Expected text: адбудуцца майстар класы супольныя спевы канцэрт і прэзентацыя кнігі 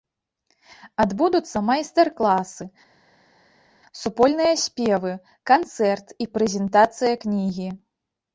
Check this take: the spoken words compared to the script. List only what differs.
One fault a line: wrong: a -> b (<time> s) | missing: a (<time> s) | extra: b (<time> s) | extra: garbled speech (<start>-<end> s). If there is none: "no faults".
no faults